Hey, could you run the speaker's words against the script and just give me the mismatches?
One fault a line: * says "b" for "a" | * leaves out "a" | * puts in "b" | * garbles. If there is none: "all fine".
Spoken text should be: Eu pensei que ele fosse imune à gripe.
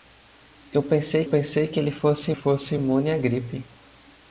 * puts in "pensei"
* puts in "fosse"